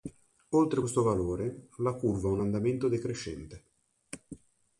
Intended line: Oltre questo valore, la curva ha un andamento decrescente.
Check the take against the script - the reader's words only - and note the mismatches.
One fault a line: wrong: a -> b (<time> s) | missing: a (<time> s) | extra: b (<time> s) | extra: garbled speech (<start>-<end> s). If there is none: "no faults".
no faults